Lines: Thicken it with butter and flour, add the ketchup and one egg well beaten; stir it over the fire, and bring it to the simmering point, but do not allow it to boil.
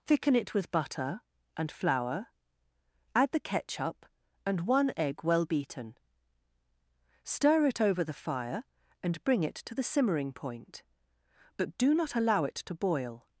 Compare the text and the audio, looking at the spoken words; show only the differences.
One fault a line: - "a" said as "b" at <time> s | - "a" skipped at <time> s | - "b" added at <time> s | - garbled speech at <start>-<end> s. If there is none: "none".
none